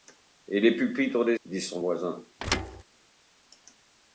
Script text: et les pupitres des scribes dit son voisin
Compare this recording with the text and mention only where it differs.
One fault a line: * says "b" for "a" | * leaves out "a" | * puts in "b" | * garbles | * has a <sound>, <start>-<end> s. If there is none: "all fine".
* leaves out "scribes"
* has a thud, 2.4-2.8 s